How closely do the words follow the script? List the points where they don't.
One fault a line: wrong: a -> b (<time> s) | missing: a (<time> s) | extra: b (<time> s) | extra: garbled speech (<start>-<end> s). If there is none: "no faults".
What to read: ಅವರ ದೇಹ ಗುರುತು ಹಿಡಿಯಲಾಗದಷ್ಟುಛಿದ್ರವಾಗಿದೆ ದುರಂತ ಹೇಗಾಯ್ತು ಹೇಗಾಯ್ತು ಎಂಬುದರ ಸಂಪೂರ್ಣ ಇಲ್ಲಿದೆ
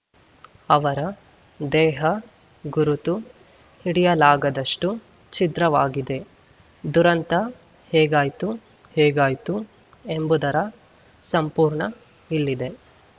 no faults